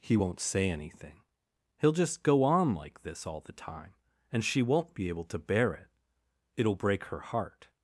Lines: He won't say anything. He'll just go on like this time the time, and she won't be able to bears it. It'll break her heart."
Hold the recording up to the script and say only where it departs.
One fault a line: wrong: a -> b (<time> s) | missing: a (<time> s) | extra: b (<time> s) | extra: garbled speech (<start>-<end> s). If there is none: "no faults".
wrong: time -> all (3.3 s)
wrong: bears -> bear (5.4 s)